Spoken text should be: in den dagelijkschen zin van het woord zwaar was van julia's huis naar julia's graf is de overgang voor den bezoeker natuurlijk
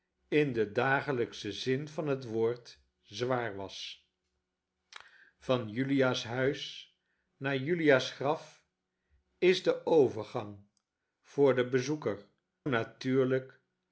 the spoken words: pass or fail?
pass